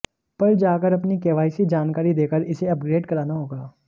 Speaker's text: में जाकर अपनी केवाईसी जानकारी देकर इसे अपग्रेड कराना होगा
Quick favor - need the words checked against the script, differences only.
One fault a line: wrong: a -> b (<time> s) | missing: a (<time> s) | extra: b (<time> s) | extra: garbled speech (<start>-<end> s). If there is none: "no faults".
wrong: में -> पर (0.4 s)